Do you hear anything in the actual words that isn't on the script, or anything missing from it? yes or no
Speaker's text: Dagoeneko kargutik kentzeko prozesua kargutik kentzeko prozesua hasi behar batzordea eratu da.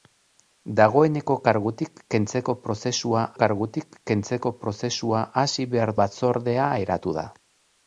no